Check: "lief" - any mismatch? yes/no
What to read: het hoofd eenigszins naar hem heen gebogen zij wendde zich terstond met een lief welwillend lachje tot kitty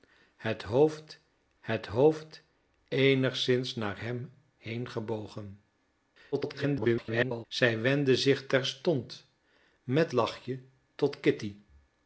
yes